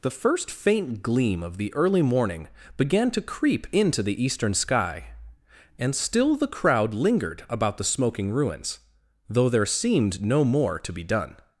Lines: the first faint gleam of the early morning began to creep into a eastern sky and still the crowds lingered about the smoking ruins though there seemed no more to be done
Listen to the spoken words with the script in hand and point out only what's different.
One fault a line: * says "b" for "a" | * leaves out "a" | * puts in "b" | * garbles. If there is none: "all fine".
* says "the" for "a"
* says "crowd" for "crowds"